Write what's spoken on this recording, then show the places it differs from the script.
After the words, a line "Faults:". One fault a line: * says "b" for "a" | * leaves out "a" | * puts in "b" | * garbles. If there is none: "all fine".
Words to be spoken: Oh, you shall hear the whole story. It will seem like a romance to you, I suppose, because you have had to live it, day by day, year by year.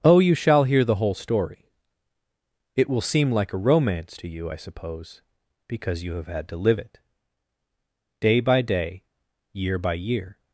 Oh, you shall hear the whole story. It will seem like a romance to you, I suppose, because you have had to live it, day by day, year by year.
Faults:
all fine